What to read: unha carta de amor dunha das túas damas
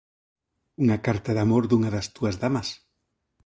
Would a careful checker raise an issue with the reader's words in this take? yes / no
no